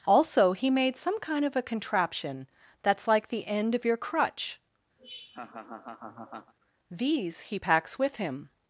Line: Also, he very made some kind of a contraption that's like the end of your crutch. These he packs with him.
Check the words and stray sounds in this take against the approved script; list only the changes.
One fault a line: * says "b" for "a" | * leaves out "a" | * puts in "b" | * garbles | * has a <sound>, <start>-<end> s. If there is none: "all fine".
* leaves out "very"
* has a laugh, 5.0-6.5 s